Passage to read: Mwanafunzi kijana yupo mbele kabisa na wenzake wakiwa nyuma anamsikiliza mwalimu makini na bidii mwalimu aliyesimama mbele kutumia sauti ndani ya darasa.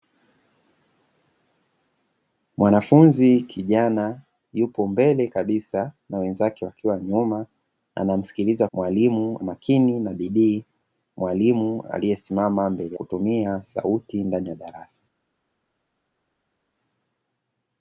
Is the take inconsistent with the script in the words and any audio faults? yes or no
no